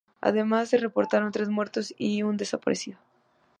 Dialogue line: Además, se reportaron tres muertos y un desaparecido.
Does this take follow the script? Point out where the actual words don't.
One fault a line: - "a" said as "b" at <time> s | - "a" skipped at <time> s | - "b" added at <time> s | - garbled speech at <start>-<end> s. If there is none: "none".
none